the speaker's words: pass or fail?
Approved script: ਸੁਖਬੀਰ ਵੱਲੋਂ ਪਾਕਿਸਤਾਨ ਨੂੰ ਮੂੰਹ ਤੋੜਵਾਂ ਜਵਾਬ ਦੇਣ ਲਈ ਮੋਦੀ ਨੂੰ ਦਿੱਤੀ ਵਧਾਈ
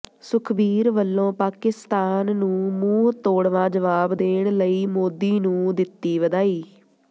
pass